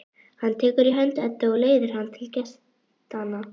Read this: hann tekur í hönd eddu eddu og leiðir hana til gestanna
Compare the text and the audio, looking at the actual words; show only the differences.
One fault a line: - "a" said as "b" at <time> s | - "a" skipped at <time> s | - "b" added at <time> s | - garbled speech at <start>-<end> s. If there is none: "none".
- "eddu" skipped at 1.5 s